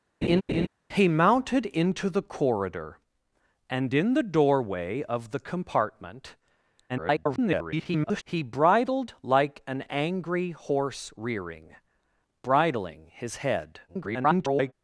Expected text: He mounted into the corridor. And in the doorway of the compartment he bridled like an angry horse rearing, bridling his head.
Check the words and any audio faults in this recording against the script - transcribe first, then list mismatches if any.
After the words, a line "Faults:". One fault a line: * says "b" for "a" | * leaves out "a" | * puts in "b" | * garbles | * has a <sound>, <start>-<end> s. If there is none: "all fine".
He mounted into the corridor. And in the doorway of the compartment [garbled] he bridled like an angry horse rearing, bridling his head. [garbled]
Faults:
* has a laugh, 0.2-0.7 s
* garbles
* garbles